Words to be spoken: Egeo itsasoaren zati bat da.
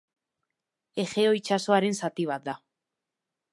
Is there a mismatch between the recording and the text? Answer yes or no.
no